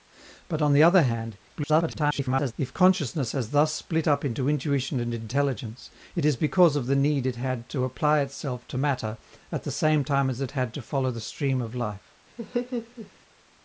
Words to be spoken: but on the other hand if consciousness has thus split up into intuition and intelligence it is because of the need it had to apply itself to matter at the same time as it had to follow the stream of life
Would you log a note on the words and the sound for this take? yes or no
yes